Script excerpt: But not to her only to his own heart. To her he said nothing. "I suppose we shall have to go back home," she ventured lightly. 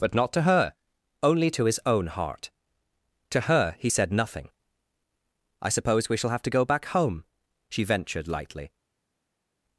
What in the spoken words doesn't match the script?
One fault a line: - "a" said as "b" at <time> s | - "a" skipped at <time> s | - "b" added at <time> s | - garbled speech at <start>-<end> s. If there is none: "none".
none